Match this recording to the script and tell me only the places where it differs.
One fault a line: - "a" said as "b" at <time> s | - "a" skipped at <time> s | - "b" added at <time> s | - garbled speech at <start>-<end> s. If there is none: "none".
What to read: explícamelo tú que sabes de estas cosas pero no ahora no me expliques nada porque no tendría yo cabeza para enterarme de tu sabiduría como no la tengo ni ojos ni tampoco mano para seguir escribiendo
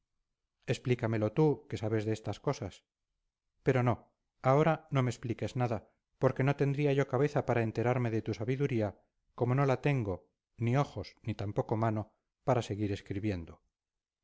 none